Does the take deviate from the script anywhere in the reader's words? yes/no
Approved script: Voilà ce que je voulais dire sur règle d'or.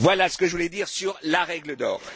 yes